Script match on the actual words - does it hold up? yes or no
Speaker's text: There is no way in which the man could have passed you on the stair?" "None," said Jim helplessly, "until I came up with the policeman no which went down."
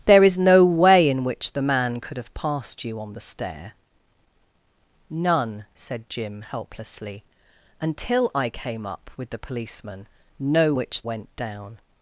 yes